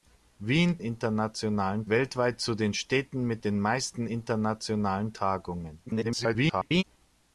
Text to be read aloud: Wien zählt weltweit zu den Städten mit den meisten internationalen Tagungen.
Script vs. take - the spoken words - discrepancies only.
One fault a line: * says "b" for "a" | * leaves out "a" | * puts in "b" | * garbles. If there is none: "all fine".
* says "internationalen" for "zählt"
* garbles